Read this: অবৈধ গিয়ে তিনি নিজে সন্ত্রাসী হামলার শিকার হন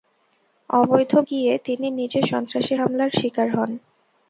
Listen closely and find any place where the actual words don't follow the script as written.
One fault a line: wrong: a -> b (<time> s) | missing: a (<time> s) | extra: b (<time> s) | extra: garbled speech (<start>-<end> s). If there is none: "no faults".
no faults